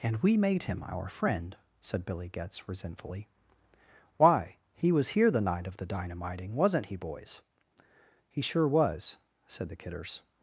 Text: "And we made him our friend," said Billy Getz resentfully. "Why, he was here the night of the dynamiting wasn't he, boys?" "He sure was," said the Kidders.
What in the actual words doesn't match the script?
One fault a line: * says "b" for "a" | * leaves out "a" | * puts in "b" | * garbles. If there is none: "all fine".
all fine